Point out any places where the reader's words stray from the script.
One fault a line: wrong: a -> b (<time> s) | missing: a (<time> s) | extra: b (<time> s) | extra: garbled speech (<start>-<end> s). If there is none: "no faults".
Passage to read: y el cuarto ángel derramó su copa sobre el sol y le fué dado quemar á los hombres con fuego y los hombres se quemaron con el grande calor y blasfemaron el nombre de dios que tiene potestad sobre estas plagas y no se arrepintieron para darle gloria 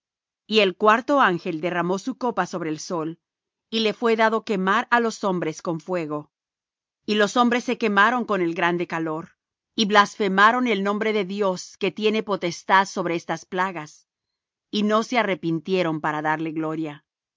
no faults